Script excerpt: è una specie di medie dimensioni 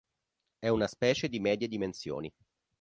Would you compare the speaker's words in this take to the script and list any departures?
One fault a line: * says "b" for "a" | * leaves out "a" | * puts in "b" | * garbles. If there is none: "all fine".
all fine